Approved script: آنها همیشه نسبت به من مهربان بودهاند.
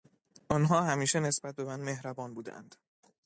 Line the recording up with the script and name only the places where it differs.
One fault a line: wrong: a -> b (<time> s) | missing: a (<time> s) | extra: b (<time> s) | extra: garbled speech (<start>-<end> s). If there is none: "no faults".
no faults